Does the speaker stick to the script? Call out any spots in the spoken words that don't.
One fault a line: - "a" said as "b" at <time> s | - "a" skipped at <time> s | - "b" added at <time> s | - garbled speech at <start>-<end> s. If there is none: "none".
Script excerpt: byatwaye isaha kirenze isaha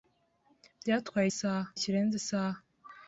none